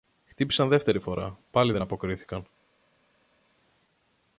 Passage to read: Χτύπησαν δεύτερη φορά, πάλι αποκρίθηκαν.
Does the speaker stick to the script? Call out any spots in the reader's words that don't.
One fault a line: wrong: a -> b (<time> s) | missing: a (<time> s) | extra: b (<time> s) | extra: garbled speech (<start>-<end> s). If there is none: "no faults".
extra: δεν (1.7 s)